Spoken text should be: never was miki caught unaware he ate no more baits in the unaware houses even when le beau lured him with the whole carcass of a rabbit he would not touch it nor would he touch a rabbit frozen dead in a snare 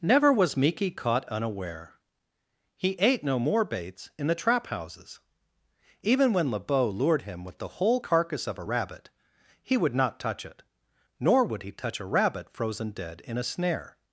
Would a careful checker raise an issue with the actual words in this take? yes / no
yes